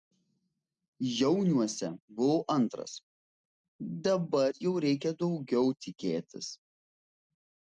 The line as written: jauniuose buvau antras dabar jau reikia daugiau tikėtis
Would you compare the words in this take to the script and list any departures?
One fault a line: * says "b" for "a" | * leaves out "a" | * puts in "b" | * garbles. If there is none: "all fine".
all fine